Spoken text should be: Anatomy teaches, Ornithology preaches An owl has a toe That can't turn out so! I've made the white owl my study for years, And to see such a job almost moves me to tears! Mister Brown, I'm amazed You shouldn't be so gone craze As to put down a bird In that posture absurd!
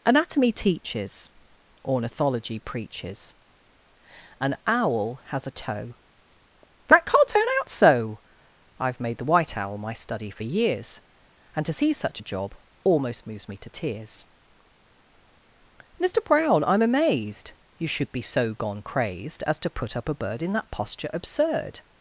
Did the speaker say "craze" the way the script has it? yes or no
no